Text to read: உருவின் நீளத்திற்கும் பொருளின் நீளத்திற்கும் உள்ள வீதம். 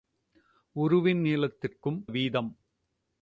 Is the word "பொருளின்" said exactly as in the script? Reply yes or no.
no